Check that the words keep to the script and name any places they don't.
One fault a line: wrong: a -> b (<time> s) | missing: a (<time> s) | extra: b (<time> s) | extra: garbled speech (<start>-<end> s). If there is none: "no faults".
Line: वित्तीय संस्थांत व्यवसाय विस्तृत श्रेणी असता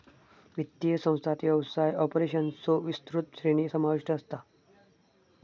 extra: ऑपरेशन्सचो (2.0 s)
extra: समाविष्ट (3.7 s)